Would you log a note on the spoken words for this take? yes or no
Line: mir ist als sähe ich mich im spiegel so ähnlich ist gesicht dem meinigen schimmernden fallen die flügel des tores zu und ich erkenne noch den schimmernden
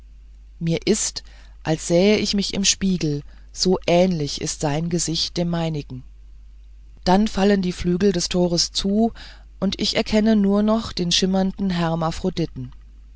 yes